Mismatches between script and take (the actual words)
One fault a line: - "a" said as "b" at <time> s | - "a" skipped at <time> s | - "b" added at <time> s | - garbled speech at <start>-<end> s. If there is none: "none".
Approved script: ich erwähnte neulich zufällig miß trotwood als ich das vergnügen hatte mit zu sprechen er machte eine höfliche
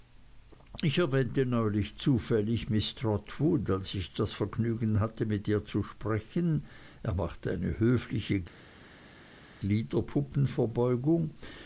- "ihr" added at 5.5 s